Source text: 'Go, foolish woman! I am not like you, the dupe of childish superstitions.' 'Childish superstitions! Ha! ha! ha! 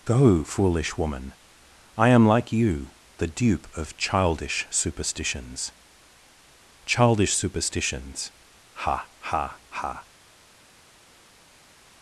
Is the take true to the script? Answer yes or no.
no